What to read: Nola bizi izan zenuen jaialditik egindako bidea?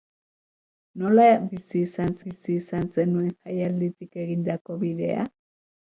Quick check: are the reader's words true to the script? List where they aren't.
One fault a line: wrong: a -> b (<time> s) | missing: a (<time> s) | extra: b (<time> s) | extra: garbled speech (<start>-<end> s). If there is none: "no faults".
extra: bizi izan (2.2 s)